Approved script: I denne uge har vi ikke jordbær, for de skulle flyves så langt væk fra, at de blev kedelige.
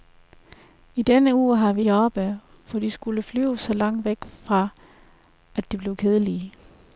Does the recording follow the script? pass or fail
fail